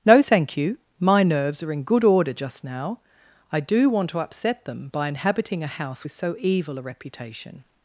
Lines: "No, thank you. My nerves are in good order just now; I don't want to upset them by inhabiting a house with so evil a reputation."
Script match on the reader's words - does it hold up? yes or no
no